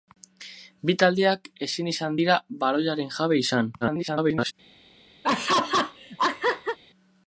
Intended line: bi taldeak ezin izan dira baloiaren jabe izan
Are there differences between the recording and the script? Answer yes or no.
yes